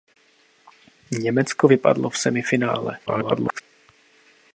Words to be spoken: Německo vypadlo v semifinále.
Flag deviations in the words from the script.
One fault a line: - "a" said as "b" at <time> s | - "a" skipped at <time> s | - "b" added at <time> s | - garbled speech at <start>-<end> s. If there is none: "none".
- garbled speech at 3.1-3.6 s